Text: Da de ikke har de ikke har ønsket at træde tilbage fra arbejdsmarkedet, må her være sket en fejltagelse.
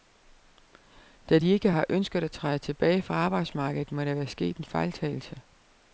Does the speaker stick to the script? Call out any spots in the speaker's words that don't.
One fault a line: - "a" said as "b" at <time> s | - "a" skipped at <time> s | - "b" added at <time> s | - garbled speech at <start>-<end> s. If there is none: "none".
- "de ikke har" skipped at 1.8 s
- "her" said as "der" at 4.0 s